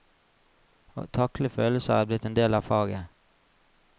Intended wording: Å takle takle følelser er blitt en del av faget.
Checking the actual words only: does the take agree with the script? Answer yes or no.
no